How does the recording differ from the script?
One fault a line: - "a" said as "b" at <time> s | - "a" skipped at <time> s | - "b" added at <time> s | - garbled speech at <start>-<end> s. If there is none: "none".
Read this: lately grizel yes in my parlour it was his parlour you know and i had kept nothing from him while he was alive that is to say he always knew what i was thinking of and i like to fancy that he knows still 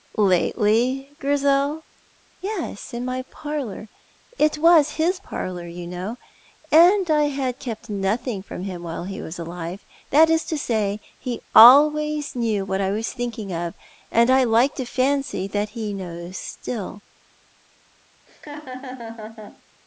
none